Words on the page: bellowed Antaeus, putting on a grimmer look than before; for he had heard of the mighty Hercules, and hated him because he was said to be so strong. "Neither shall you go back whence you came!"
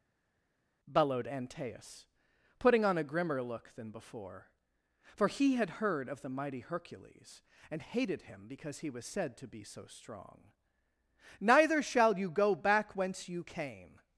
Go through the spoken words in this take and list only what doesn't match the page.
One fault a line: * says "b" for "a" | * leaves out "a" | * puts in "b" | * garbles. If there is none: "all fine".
all fine